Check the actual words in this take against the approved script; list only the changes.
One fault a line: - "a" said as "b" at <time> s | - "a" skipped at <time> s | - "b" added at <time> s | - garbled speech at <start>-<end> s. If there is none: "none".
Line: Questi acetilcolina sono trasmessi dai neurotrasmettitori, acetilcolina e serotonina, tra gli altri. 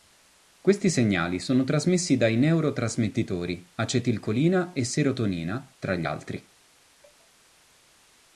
- "acetilcolina" said as "segnali" at 0.9 s